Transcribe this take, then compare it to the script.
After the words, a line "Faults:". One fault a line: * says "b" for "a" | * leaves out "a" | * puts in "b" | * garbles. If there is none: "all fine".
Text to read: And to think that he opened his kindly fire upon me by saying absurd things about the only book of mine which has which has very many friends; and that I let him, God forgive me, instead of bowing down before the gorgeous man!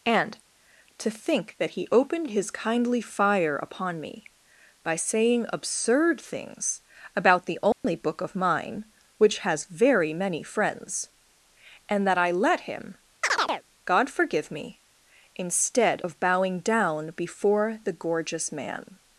And to think that he opened his kindly fire upon me by saying absurd things about the only book of mine which has very many friends; and that I let him, God forgive me, instead of bowing down before the gorgeous man!
Faults:
* leaves out "which has"